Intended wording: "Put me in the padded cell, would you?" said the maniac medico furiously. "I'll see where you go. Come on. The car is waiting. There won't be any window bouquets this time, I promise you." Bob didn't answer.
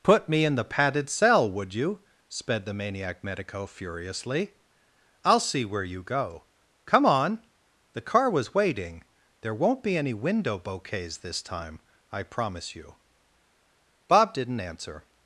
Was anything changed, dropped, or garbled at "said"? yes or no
yes